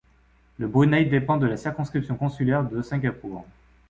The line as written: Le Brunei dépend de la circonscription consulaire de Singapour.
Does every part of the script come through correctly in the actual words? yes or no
yes